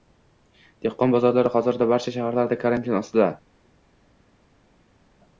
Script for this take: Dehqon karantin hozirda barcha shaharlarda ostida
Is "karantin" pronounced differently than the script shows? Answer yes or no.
yes